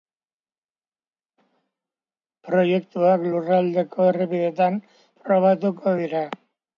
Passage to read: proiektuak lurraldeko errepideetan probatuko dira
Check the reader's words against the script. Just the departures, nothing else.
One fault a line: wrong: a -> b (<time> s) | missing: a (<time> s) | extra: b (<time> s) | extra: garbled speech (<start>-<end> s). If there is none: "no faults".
no faults